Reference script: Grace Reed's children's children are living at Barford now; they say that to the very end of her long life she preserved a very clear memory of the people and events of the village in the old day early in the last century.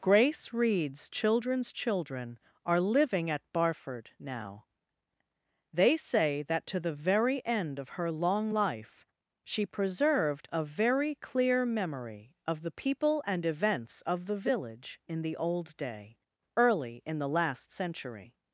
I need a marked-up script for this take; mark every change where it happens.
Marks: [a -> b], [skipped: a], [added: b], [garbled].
Grace Reed's children's children are living at Barford now; they say that to the very end of her long life she preserved a very clear memory of the people and events of the village in the old day early in the last century.